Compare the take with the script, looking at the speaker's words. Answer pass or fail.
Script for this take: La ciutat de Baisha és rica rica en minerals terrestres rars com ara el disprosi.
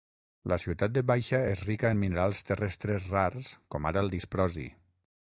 fail